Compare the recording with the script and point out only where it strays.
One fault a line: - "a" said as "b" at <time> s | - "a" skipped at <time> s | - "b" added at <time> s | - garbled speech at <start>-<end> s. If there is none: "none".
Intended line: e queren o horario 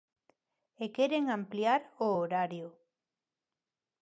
- "ampliar" added at 1.4 s